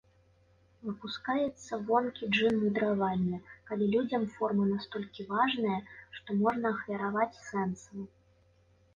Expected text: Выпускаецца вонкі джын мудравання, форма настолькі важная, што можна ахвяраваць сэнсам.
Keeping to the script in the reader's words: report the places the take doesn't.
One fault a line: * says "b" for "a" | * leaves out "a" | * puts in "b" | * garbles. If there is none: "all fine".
* puts in "калі людзям"